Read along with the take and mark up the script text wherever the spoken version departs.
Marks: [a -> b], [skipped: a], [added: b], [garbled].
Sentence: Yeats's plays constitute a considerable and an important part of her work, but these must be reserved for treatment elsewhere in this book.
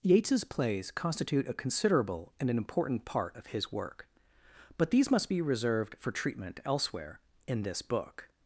Yeats's plays constitute a considerable and an important part of [her -> his] work, but these must be reserved for treatment elsewhere in this book.